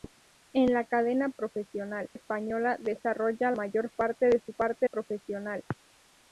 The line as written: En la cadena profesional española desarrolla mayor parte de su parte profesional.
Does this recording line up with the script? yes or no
yes